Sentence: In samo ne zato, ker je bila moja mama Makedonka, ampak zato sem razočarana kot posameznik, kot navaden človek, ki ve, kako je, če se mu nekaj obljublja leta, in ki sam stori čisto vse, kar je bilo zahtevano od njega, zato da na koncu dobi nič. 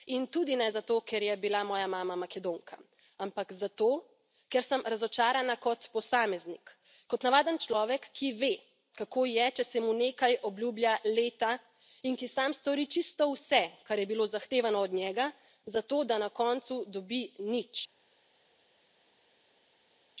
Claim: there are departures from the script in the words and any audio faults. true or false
true